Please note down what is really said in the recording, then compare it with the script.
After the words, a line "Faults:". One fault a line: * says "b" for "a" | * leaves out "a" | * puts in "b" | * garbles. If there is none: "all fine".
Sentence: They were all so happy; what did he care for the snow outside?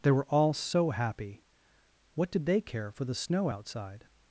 They were all so happy; what did they care for the snow outside?
Faults:
* says "they" for "he"